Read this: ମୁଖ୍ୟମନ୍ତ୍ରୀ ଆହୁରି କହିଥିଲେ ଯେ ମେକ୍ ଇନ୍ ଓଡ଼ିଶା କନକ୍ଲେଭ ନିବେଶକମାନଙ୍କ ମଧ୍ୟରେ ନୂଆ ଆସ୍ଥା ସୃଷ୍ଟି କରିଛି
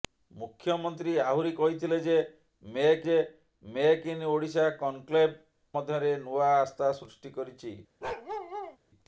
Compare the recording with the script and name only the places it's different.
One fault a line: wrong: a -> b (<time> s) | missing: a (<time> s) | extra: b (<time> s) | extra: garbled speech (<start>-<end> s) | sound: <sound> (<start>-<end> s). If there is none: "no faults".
extra: ଯେ ମେକ୍ (3.1 s)
missing: ନିବେଶକମାନଙ୍କ (5.3 s)
sound: bark (8.0-8.8 s)